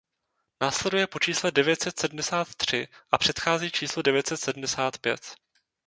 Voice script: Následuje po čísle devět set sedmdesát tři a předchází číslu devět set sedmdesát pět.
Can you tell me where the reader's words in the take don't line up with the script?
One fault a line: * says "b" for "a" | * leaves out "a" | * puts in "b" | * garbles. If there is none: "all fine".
all fine